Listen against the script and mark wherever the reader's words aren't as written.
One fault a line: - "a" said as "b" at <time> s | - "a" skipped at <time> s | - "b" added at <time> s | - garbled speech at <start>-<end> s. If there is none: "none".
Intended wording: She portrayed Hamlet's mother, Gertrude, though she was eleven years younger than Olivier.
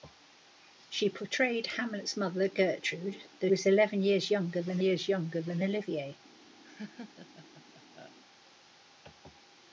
- "she" skipped at 3.5 s
- "years younger than" added at 4.8 s